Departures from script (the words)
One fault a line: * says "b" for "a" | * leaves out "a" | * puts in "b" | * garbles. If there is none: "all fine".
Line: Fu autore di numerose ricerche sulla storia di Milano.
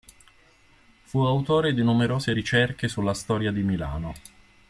all fine